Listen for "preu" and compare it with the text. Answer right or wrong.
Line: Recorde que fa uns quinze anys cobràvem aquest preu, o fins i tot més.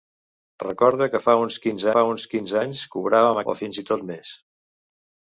wrong